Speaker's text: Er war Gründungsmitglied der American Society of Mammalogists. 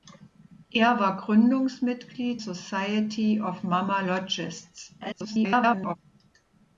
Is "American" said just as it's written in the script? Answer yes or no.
no